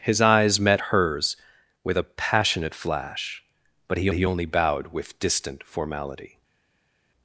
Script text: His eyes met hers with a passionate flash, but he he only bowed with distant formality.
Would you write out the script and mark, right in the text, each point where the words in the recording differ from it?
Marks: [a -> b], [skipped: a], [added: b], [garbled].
His eyes met hers with a passionate flash, but he he only bowed with distant formality.